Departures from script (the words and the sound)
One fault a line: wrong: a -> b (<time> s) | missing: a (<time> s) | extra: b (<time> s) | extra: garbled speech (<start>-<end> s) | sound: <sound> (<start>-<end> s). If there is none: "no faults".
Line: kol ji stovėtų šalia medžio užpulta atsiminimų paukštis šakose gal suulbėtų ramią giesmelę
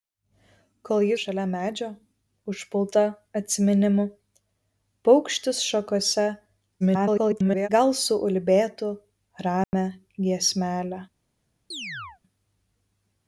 missing: stovėtų (1.1 s)
extra: garbled speech (6.8-7.7 s)
sound: dropout (9.6-9.7 s)
sound: chirp (11.7-12.2 s)